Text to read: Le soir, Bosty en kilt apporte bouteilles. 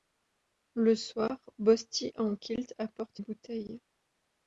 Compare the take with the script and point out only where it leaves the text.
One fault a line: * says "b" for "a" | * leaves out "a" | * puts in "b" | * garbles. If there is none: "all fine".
all fine